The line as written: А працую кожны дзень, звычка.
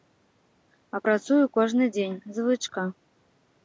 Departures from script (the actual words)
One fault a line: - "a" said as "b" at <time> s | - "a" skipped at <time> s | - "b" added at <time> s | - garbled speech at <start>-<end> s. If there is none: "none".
none